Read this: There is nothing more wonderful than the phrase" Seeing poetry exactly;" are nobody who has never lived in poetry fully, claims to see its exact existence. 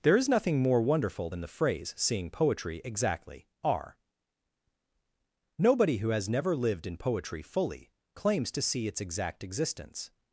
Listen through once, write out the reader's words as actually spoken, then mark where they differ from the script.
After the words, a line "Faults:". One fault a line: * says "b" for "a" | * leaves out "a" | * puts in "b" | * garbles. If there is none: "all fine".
There is nothing more wonderful than the phrase" Seeing poetry exactly;" are nobody who has never lived in poetry fully, claims to see its exact existence.
Faults:
all fine